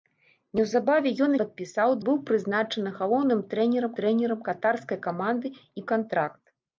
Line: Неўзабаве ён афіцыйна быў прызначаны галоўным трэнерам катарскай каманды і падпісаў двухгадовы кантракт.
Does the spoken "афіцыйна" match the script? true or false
false